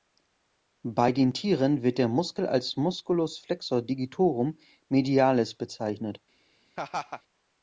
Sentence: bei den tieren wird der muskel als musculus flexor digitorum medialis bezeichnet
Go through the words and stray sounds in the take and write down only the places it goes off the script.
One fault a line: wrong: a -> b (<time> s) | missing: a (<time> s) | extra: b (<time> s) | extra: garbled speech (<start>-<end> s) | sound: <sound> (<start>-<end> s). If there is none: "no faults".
sound: laugh (6.8-7.2 s)